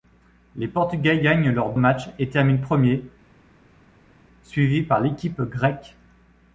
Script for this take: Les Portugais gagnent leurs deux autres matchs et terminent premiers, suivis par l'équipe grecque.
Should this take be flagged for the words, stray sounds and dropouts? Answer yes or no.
yes